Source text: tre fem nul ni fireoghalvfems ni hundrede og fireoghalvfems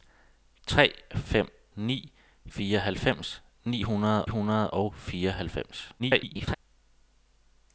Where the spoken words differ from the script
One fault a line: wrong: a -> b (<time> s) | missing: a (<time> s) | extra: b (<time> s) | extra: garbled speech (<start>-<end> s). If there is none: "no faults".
missing: nul (1.5 s)
extra: hundrede (4.3 s)
extra: garbled speech (6.0-6.6 s)